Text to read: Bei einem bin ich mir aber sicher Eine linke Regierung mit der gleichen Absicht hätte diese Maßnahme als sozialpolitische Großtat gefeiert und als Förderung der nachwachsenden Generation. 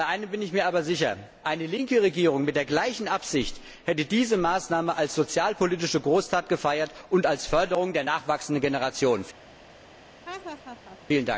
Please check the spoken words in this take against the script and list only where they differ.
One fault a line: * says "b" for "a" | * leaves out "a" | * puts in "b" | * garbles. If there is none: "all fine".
all fine